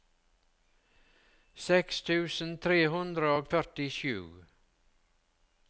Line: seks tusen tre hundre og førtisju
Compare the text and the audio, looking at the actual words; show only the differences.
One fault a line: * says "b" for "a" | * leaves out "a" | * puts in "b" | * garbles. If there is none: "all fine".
all fine